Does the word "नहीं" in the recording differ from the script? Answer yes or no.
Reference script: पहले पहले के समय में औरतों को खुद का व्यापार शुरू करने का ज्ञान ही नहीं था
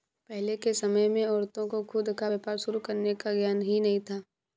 no